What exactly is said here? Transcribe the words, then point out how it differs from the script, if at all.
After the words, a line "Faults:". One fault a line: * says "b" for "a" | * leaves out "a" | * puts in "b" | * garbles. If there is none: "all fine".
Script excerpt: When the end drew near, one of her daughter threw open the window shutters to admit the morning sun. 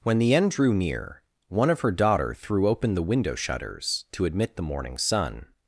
When the end drew near, one of her daughter threw open the window shutters to admit the morning sun.
Faults:
all fine